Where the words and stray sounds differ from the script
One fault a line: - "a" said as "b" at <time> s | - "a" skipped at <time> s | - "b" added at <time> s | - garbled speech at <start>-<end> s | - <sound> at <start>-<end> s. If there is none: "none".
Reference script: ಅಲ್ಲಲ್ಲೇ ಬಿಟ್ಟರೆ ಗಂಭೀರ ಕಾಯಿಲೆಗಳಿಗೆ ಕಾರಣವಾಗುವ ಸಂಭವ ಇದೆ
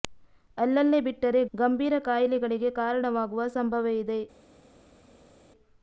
none